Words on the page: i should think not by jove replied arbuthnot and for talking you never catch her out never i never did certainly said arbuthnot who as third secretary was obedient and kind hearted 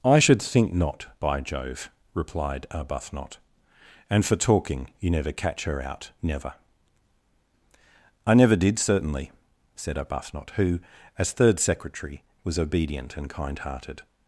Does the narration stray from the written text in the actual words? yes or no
no